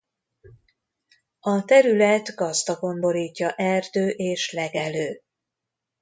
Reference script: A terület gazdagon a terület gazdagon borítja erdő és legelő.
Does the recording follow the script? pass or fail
fail